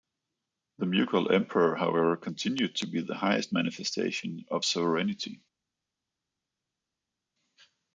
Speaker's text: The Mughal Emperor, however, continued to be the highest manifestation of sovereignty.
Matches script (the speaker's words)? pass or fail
pass